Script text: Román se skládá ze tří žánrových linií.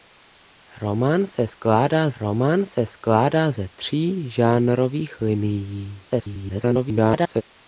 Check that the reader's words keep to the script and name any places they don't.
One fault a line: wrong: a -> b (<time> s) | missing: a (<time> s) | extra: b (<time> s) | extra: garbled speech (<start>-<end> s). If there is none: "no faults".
extra: román se skládá (2.2 s)
extra: garbled speech (6.1-7.4 s)